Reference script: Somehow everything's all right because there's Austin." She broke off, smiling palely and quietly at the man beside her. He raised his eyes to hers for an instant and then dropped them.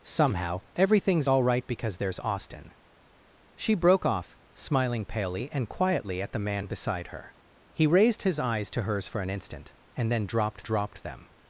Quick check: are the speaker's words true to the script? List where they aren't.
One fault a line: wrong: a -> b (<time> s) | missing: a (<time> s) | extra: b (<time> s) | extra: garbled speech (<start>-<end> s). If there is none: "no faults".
extra: dropped (10.6 s)